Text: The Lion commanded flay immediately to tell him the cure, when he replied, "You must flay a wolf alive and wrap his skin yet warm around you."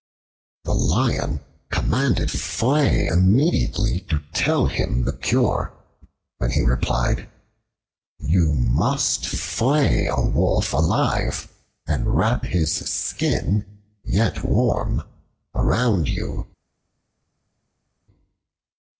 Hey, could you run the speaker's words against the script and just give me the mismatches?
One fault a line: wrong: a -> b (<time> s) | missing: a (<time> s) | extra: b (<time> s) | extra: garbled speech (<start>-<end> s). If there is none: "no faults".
no faults